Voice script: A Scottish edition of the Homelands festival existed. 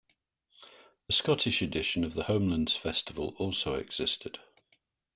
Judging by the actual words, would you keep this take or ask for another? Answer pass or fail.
fail